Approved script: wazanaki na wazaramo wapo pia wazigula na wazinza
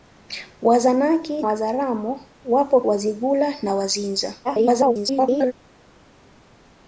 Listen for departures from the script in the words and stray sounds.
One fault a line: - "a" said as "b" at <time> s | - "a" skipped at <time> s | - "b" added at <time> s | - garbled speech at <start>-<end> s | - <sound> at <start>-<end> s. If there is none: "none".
- "na" skipped at 1.4 s
- "pia" skipped at 2.8 s
- garbled speech at 4.4-5.5 s